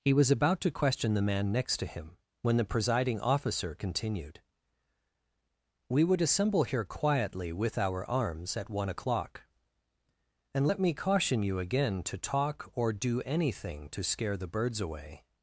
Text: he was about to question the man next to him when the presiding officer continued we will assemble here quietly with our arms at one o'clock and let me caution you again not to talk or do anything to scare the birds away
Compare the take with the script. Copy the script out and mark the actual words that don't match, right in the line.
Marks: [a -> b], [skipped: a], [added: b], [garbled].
he was about to question the man next to him when the presiding officer continued we [will -> would] assemble here quietly with our arms at one o'clock and let me caution you again [skipped: not] to talk or do anything to scare the birds away